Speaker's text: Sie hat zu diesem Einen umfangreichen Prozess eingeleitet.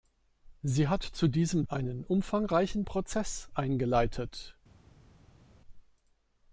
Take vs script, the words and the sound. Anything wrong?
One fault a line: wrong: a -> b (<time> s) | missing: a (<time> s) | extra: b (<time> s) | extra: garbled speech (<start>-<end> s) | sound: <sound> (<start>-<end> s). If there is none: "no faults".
no faults